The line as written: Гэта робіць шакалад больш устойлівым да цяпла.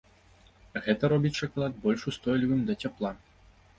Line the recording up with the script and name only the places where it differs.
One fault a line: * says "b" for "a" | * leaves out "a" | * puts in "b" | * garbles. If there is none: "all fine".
all fine